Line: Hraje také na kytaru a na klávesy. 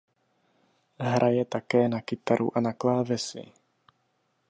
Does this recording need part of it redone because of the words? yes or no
no